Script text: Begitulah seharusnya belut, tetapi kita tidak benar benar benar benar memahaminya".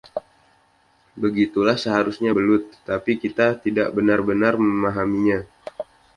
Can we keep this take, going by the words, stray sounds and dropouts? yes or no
no